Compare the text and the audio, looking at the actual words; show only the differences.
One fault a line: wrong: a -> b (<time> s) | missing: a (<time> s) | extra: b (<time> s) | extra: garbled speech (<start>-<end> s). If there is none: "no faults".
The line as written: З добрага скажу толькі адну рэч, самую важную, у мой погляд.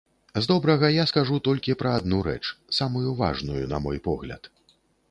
extra: я (0.9 s)
extra: пра (1.8 s)
wrong: у -> на (3.8 s)